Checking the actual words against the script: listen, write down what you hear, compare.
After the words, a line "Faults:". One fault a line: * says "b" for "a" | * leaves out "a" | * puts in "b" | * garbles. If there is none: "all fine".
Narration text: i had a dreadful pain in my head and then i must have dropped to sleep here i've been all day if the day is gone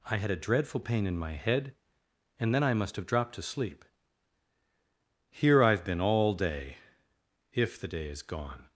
i had a dreadful pain in my head and then i must have dropped to sleep here i've been all day if the day is gone
Faults:
all fine